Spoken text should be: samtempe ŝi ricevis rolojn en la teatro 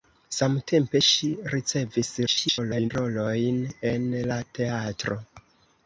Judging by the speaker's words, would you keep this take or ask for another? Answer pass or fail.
fail